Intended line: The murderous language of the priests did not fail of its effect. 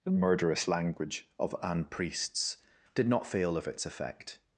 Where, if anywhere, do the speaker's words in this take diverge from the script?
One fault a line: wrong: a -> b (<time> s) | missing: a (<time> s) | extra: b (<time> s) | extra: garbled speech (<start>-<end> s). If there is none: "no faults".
wrong: the -> an (1.6 s)